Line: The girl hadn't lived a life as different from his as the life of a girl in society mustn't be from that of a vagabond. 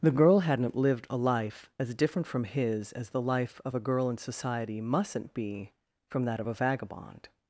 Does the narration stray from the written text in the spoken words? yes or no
no